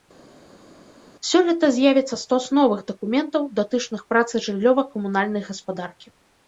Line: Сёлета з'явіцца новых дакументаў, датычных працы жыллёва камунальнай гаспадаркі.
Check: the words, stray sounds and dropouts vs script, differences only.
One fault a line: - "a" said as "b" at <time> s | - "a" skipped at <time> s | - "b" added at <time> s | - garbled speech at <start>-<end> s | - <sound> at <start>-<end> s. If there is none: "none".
- "стос" added at 2.2 s